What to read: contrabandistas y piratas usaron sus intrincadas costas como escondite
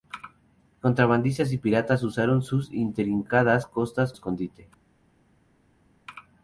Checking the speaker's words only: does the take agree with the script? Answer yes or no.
no